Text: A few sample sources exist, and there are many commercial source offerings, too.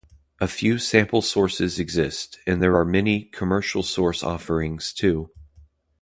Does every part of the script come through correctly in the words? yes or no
yes